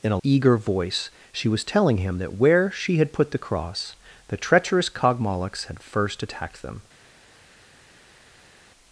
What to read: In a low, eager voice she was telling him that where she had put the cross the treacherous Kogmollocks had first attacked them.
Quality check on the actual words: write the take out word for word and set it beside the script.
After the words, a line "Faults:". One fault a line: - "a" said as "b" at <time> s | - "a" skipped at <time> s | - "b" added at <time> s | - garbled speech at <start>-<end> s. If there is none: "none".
In a eager voice she was telling him that where she had put the cross the treacherous Kogmollocks had first attacked them.
Faults:
- "low" skipped at 0.2 s